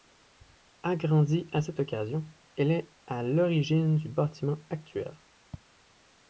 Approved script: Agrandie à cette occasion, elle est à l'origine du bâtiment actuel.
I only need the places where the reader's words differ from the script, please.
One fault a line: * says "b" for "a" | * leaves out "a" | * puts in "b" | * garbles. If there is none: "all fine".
all fine